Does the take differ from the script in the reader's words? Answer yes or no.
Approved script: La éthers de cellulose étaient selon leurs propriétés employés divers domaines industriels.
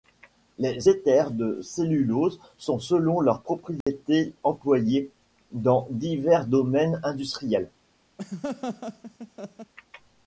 yes